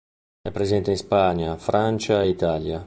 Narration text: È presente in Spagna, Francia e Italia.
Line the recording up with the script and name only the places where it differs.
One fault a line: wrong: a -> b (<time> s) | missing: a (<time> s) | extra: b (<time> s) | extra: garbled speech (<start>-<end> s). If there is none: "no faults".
no faults